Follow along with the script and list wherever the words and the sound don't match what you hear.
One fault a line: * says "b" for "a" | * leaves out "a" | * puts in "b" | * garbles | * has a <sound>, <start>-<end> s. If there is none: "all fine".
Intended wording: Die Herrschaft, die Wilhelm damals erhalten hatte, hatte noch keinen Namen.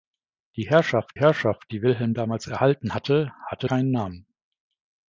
* puts in "Herrschaft"
* leaves out "noch"